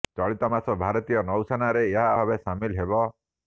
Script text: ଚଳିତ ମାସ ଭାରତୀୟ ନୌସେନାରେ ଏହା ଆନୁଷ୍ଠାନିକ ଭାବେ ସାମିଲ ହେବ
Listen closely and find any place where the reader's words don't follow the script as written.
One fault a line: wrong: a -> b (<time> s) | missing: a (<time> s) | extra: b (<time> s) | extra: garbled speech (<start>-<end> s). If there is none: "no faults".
missing: ଆନୁଷ୍ଠାନିକ (2.1 s)